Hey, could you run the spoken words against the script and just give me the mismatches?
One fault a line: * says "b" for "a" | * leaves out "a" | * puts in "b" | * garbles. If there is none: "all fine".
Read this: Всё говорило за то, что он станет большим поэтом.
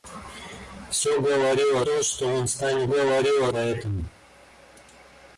* leaves out "за"
* says "говорило" for "большим"